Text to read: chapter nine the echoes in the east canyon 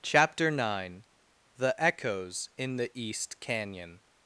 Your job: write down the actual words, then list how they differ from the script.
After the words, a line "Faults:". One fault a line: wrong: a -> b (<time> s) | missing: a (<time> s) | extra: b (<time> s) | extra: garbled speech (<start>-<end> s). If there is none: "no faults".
chapter nine the echoes in the east canyon
Faults:
no faults